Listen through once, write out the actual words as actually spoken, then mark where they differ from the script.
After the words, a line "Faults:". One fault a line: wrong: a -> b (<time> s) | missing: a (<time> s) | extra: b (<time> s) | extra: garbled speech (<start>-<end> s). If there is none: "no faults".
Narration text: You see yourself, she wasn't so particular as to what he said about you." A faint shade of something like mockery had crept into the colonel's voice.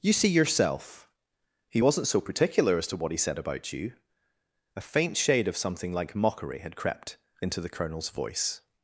You see yourself, he wasn't so particular as to what he said about you." A faint shade of something like mockery had crept into the colonel's voice.
Faults:
wrong: she -> he (1.7 s)